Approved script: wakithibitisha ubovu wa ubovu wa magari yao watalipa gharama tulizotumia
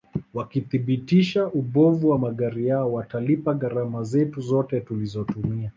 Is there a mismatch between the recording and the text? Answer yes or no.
yes